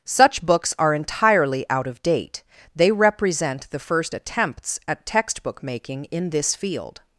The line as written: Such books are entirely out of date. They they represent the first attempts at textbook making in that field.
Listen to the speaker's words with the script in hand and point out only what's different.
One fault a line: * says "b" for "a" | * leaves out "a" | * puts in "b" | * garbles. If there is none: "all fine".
* leaves out "they"
* says "this" for "that"